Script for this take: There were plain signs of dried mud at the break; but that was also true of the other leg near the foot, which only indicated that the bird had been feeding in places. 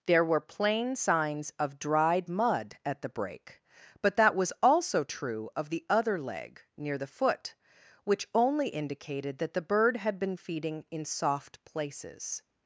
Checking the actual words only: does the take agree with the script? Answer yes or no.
no